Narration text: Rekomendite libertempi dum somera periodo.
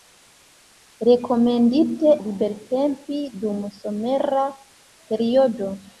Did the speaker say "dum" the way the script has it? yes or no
yes